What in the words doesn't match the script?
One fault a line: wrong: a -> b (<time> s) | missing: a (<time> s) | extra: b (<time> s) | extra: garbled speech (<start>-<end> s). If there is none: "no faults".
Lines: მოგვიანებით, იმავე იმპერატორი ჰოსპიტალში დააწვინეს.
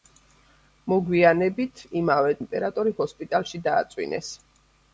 no faults